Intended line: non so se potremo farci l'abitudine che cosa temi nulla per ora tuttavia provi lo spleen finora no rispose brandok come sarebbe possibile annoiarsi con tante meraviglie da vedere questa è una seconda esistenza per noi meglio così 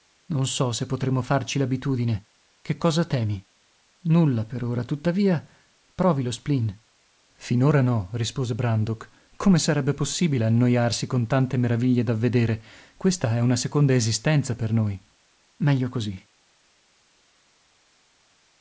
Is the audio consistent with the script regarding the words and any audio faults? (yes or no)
yes